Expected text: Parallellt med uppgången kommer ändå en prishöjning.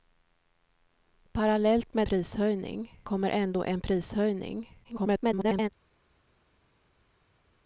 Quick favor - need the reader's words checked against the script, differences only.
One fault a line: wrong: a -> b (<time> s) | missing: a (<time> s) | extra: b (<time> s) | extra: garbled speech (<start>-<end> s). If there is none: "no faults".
wrong: uppgången -> prishöjning (2.0 s)
extra: garbled speech (4.8-5.7 s)